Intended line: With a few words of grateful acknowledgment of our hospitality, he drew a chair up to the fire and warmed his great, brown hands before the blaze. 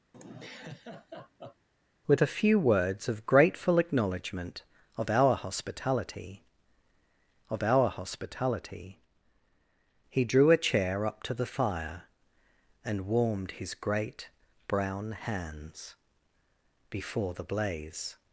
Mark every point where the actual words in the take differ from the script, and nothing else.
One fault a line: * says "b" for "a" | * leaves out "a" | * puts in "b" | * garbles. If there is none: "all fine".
* puts in "of our hospitality"